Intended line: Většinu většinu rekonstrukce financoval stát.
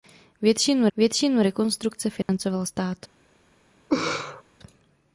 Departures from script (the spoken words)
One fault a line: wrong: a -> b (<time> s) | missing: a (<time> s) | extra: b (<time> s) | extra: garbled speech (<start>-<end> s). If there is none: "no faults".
no faults